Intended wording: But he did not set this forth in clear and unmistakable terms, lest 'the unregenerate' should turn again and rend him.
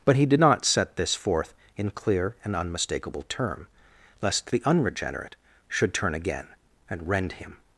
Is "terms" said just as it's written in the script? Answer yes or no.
no